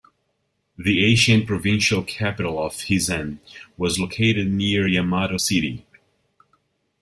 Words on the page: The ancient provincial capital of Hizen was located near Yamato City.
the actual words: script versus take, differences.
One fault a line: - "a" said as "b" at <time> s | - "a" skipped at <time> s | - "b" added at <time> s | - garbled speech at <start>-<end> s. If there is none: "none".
none